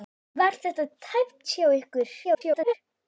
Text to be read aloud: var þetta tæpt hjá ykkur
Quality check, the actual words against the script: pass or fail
fail